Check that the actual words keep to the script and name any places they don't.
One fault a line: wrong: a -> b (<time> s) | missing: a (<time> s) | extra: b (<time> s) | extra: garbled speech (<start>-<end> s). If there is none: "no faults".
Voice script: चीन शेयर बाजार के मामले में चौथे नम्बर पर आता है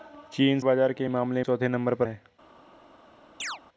missing: शेयर (0.6 s)
missing: में (1.4 s)
missing: आता (2.1 s)